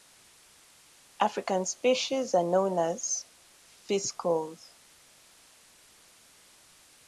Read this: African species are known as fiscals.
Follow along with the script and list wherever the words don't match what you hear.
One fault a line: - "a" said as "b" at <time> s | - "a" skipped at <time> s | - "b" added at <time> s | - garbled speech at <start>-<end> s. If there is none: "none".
none